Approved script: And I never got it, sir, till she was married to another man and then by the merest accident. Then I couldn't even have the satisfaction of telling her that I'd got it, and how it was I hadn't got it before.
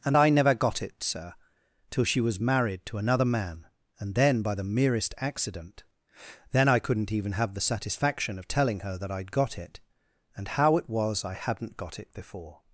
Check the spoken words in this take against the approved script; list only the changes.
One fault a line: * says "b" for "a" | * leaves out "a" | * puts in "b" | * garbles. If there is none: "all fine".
all fine